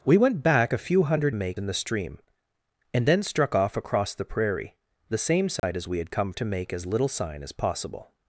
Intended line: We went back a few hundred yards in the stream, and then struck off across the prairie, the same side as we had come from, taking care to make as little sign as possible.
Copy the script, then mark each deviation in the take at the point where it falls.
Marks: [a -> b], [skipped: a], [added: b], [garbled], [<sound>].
We went back a few hundred [yards -> make] in the stream, and then struck off across the prairie, the same side [dropout] as we had come [skipped: from, taking care] to make as little sign as possible.